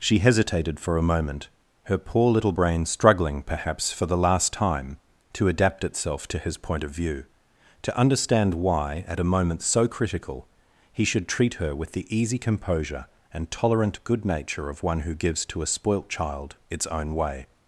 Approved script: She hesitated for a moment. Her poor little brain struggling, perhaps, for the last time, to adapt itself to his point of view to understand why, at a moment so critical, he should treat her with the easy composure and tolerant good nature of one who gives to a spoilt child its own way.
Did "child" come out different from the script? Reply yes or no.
no